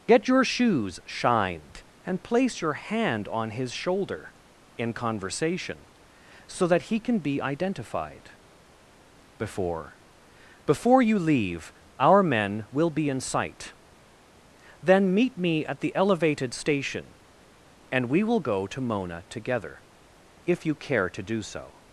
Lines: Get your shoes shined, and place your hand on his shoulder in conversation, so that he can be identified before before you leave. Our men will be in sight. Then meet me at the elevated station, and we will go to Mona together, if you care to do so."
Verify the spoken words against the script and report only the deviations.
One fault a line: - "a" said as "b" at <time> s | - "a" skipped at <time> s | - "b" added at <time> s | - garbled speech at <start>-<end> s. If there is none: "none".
none